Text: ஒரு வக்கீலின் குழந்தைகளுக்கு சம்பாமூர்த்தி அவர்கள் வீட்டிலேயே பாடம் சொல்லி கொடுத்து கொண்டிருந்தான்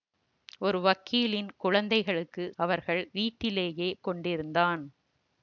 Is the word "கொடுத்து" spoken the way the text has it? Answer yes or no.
no